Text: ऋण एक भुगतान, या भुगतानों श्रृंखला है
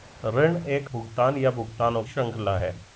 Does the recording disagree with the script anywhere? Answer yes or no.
no